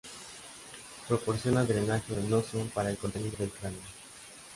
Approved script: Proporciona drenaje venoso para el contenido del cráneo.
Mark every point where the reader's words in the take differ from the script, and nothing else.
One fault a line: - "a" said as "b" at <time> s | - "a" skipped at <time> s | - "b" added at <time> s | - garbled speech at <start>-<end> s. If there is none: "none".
none